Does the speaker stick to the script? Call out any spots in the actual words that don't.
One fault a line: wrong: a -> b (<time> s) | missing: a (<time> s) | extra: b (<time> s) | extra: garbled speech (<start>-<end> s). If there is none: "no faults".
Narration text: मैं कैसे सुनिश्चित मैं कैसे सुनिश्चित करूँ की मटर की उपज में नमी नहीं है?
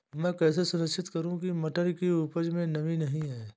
missing: मैं कैसे सुनिश्चित (1.1 s)